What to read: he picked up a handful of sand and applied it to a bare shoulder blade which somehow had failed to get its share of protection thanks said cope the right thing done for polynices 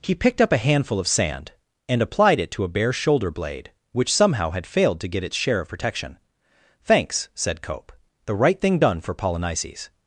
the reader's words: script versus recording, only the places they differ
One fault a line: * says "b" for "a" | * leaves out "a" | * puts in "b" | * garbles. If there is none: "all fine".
all fine